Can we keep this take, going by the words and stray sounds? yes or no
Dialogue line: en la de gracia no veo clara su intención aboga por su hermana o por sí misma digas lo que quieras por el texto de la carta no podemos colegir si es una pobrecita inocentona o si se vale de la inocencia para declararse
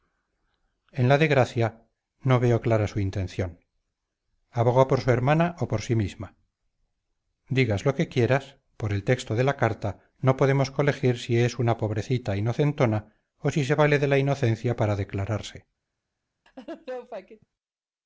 no